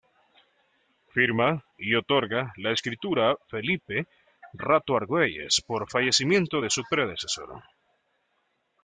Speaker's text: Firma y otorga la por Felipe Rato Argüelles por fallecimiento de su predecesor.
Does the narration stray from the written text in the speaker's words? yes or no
yes